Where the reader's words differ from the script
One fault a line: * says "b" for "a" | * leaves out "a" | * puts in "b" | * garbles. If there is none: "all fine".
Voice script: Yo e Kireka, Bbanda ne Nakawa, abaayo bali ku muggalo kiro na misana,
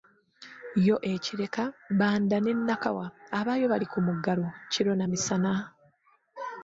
all fine